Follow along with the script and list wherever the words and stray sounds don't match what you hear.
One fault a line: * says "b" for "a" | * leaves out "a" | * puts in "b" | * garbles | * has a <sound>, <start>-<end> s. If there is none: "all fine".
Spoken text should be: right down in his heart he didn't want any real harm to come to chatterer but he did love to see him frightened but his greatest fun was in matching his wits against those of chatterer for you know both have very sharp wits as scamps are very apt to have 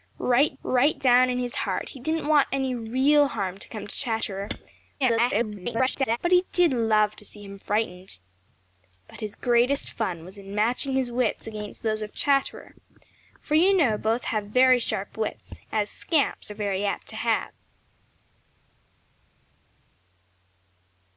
* puts in "right"
* garbles